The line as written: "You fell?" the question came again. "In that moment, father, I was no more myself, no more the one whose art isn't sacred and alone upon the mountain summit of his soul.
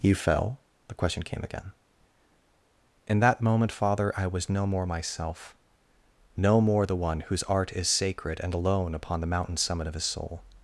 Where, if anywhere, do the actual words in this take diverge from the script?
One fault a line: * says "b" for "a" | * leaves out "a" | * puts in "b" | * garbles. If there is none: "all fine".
* says "is" for "isn't"